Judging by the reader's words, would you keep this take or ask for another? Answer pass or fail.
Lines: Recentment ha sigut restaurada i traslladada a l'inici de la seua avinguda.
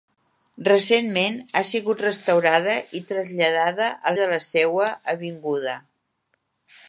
fail